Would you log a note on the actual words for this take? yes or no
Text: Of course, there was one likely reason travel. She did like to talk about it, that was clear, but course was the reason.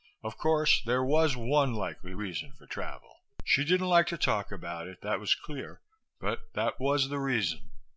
yes